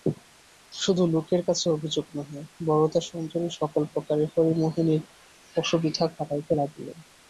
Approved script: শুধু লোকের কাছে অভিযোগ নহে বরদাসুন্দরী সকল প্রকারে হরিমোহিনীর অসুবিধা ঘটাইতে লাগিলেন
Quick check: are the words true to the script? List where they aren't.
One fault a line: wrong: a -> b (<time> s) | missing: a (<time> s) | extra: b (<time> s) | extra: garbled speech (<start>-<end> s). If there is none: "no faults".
no faults